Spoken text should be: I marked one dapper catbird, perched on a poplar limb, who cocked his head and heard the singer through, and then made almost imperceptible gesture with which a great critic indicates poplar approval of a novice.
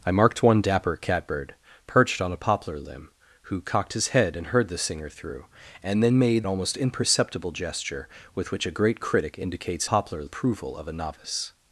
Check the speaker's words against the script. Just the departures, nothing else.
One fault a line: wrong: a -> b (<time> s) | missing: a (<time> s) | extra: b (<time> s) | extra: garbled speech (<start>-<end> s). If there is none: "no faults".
no faults